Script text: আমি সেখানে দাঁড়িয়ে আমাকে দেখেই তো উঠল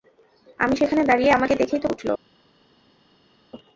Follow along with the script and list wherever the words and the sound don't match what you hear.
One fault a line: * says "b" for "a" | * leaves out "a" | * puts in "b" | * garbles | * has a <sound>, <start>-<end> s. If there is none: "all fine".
all fine